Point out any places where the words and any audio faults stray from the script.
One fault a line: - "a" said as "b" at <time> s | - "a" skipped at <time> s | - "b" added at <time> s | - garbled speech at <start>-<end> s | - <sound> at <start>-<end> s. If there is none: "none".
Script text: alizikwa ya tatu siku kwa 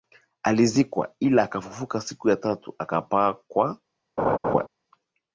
- "ila akafufuka siku" added at 1.2 s
- "siku" said as "akapaa" at 2.8 s
- laugh at 4.2-4.7 s